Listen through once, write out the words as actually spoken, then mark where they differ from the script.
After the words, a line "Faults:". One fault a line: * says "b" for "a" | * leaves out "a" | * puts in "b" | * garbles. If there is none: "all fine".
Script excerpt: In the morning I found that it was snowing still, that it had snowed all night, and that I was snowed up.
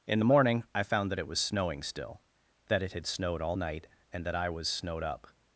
In the morning I found that it was snowing still, that it had snowed all night, and that I was snowed up.
Faults:
all fine